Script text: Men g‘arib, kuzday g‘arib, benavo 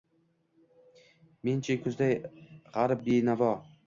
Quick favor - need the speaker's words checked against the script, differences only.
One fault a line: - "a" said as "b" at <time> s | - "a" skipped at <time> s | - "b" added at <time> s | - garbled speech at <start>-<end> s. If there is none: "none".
- "g‘arib" said as "chi" at 1.7 s